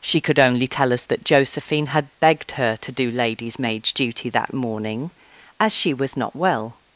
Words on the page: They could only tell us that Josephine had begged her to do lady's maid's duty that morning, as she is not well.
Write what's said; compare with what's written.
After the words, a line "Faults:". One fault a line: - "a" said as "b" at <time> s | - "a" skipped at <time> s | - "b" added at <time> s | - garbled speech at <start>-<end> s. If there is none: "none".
She could only tell us that Josephine had begged her to do lady's maid's duty that morning, as she was not well.
Faults:
- "They" said as "She" at 0.0 s
- "is" said as "was" at 5.9 s